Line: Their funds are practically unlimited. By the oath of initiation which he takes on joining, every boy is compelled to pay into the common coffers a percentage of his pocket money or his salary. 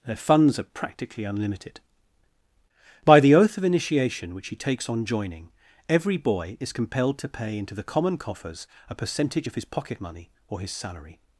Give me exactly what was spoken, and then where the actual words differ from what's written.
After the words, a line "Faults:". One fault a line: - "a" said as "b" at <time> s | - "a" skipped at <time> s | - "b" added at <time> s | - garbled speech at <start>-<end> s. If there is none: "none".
Their funds are practically unlimited. By the oath of initiation which he takes on joining, every boy is compelled to pay into the common coffers a percentage of his pocket money or his salary.
Faults:
none